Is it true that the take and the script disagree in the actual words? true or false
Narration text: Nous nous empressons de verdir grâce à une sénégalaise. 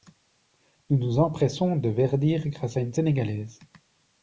false